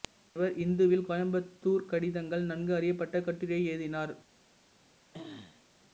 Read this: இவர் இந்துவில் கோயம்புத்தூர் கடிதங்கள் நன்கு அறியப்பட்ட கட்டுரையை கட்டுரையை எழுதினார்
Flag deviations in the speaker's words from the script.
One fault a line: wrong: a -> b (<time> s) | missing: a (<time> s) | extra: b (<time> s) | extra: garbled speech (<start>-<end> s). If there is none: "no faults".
missing: கட்டுரையை (3.6 s)